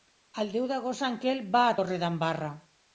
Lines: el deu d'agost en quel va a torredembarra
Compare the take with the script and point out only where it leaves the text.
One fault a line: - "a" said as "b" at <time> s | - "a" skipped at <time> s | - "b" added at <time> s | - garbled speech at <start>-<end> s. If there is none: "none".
none